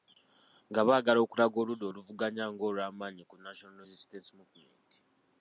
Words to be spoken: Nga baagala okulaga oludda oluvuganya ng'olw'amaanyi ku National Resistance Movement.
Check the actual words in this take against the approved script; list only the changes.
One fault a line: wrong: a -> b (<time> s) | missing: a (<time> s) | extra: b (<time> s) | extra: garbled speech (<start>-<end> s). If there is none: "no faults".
no faults